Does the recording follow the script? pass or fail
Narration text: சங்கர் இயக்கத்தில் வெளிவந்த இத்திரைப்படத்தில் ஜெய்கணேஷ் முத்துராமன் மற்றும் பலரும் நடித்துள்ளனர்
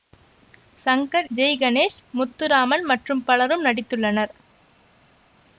fail